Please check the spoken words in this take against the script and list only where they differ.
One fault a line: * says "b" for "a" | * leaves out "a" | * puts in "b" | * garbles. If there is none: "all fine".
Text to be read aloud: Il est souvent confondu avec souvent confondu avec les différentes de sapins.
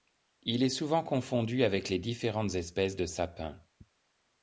* leaves out "souvent confondu avec"
* puts in "espèces"